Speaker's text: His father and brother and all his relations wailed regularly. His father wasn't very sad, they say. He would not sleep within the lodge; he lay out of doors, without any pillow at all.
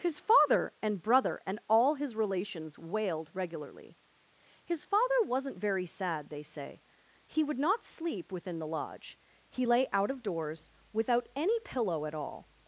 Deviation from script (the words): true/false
false